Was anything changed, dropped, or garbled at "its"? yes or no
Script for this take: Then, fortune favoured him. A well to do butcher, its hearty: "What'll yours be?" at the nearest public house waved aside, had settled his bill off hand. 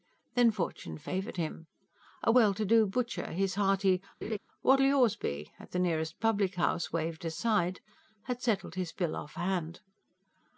yes